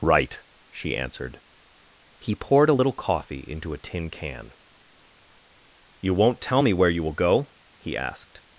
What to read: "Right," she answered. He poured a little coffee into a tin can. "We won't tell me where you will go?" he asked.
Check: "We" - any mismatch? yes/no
yes